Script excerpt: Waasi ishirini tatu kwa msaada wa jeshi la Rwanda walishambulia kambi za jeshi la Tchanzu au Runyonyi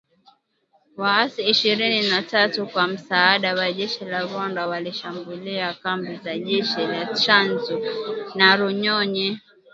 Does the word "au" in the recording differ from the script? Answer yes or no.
yes